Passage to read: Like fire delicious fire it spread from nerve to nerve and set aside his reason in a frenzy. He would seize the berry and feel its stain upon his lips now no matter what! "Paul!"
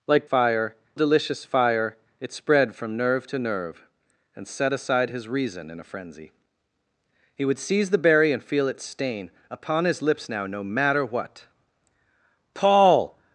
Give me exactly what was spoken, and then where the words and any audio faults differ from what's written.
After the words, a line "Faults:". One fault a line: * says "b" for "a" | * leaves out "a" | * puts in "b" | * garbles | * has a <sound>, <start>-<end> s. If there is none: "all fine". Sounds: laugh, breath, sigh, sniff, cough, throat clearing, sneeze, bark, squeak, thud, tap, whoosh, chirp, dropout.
Like fire delicious fire it spread from nerve to nerve and set aside his reason in a frenzy. He would seize the berry and feel its stain upon his lips now no matter what! "Paul!"
Faults:
all fine